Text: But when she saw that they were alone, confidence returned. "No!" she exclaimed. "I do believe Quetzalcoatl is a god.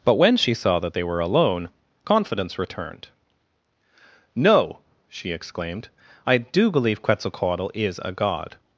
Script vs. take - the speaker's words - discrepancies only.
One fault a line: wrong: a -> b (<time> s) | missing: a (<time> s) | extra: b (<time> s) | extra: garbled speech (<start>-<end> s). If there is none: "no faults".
no faults